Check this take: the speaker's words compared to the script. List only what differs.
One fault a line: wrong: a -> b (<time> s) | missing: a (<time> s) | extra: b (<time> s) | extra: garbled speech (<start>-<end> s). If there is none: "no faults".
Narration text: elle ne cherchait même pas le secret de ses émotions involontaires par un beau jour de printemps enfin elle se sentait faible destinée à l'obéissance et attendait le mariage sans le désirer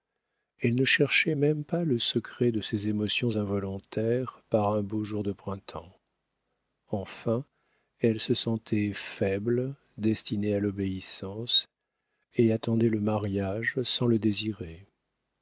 no faults